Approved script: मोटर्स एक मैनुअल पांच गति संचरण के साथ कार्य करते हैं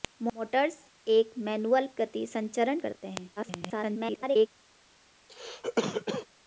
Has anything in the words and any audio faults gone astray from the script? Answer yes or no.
yes